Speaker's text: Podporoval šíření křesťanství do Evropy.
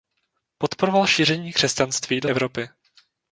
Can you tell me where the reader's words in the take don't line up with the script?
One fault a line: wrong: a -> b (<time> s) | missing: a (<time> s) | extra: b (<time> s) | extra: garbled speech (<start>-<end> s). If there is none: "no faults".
no faults